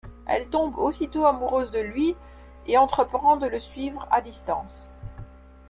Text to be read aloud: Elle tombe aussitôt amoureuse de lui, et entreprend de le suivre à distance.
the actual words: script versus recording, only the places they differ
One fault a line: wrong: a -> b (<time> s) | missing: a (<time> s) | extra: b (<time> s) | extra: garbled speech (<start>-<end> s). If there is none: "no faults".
no faults